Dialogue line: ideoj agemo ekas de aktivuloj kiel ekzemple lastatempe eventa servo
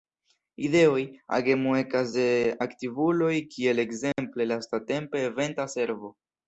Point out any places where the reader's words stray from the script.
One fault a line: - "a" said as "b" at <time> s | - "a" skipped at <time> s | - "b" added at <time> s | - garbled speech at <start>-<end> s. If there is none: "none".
none